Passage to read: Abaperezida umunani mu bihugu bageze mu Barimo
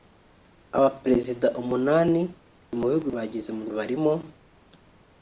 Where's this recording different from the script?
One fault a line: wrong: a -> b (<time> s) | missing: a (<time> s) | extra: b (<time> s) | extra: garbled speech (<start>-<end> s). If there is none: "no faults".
no faults